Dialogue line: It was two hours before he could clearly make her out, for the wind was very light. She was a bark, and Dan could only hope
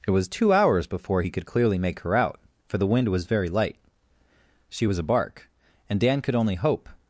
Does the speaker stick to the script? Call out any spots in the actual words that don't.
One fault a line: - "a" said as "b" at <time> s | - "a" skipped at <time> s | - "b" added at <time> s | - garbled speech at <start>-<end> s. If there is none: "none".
none